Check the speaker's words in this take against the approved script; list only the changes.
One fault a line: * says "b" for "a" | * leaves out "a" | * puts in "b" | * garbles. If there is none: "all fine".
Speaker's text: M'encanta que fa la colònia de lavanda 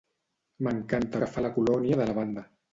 all fine